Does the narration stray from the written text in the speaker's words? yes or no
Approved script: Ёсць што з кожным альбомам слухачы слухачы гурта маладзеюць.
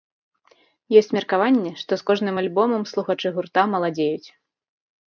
yes